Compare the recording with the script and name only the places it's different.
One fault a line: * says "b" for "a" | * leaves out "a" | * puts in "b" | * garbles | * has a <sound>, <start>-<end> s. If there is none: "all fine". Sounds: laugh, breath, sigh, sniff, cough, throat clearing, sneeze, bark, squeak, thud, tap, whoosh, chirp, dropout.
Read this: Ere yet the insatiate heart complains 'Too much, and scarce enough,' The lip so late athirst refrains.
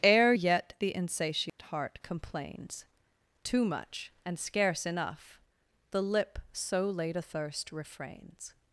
* has a dropout, 1.5-1.6 s